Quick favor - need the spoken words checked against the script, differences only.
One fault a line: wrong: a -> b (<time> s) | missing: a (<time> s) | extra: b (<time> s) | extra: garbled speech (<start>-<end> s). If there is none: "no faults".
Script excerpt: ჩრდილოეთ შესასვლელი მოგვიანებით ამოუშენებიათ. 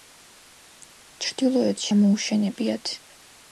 missing: შესასვლელი მოგვიანებით (1.9 s)